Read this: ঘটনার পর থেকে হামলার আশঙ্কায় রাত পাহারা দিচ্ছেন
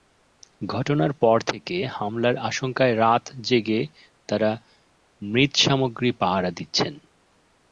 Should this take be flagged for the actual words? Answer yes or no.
yes